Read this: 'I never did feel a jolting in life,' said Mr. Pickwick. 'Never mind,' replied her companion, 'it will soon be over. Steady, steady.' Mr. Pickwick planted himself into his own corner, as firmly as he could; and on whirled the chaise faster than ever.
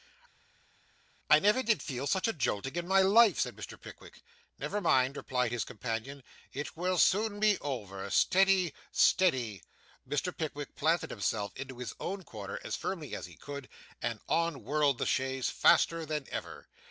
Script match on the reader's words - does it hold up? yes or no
no